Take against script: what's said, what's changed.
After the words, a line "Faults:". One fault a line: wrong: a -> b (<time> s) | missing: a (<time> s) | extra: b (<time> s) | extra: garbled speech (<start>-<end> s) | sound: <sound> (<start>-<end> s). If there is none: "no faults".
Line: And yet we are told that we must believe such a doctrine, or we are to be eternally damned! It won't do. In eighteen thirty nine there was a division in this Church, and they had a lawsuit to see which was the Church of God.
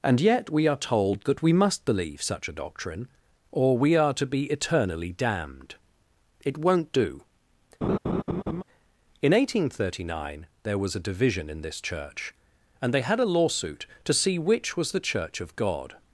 And yet we are told that we must believe such a doctrine, or we are to be eternally damned! It won't do. In eighteen thirty nine there was a division in this Church, and they had a lawsuit to see which was the Church of God.
Faults:
sound: laugh (7.8-8.6 s)